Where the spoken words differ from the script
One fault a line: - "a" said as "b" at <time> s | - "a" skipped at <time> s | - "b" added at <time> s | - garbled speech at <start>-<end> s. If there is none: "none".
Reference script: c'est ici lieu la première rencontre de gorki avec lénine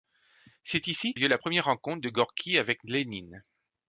none